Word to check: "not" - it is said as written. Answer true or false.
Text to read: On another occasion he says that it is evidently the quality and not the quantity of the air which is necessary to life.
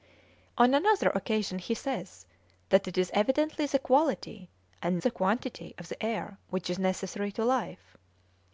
false